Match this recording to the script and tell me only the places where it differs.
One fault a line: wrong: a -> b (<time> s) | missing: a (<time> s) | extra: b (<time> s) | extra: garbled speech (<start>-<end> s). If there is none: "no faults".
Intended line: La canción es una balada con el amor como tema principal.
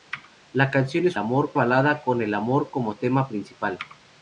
wrong: una -> amor (1.2 s)